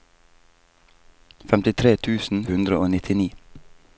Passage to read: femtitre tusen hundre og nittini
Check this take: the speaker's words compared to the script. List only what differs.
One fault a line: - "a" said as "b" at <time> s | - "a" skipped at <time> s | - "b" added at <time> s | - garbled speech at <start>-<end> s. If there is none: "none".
none